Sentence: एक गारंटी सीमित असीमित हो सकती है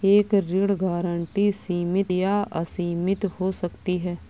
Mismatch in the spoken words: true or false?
true